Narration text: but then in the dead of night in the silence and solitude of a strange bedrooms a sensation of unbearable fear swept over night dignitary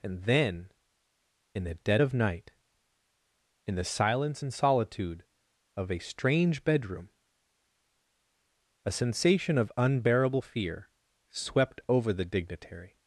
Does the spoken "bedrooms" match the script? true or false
false